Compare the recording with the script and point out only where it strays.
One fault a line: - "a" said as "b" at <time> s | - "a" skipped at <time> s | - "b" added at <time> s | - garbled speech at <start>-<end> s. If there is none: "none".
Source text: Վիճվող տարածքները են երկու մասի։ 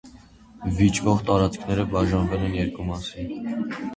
- "բաժանվել" added at 1.9 s